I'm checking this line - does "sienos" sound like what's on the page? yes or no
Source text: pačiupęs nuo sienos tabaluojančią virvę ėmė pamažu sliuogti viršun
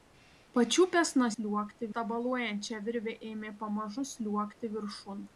no